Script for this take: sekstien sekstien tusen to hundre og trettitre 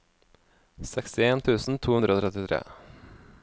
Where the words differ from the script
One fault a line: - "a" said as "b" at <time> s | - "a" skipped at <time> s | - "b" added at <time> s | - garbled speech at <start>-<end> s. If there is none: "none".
- "sekstien" skipped at 1.4 s